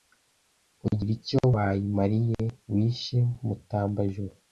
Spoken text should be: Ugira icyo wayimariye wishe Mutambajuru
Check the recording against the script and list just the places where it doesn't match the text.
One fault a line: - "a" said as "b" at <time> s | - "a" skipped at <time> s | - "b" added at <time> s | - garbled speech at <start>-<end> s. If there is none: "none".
none